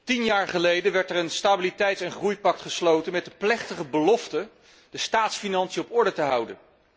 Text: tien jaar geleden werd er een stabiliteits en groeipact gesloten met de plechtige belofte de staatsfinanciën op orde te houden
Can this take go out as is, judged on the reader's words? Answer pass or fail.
pass